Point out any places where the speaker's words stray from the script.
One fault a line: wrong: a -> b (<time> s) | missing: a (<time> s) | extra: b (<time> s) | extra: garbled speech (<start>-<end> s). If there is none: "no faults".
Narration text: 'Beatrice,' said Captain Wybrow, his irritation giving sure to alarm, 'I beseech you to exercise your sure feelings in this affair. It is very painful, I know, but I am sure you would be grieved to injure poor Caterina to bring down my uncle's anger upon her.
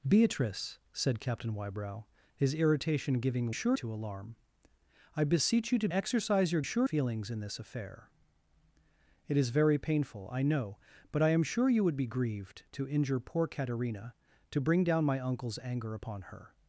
no faults